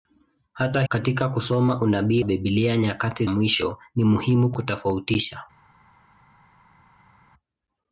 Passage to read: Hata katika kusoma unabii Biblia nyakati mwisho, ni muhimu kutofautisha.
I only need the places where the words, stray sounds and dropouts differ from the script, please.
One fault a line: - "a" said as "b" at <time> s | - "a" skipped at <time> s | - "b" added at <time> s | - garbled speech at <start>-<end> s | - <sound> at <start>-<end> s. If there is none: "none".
none